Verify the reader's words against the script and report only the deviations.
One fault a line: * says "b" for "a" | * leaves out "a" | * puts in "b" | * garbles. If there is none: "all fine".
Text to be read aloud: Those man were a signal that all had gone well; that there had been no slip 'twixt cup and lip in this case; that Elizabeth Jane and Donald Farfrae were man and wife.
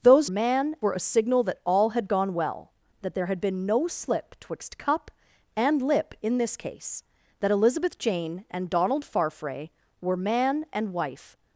all fine